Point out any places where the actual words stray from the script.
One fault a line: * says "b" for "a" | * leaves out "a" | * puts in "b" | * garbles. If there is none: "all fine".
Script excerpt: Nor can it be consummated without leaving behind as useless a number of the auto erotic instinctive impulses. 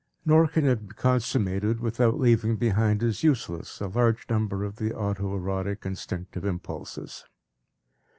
* puts in "large"